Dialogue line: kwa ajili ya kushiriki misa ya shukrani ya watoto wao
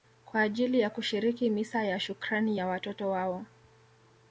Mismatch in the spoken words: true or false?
false